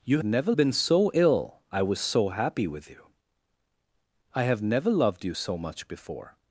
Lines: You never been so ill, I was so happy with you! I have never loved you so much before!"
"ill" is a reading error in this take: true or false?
false